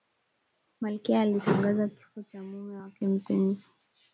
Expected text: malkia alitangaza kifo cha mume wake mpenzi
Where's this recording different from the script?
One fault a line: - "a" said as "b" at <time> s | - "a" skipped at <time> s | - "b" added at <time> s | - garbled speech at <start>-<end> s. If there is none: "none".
none